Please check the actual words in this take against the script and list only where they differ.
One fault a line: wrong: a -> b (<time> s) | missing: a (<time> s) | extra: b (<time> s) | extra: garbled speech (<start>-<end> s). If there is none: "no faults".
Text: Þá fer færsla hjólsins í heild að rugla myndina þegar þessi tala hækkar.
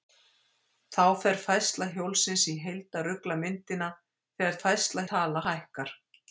wrong: þessi -> færsla (4.6 s)